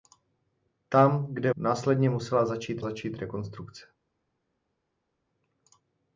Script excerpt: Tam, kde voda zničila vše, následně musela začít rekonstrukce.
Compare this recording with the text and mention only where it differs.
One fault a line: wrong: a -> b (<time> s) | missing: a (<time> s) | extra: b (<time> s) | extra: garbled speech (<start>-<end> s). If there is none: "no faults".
missing: voda zničila vše (1.5 s)
extra: začít (2.8 s)